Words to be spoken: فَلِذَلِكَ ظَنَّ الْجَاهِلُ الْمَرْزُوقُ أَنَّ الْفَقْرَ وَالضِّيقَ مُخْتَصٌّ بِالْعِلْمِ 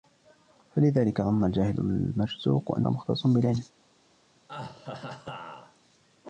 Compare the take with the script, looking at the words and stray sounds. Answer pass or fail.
fail